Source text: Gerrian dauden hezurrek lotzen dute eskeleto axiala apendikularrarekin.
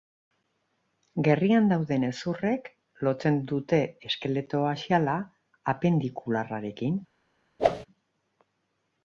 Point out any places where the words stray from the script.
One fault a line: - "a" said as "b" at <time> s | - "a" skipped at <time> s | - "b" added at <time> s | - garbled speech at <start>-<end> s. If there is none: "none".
none